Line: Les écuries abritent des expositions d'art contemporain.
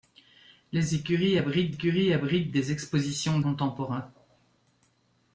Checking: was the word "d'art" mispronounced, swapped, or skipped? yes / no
yes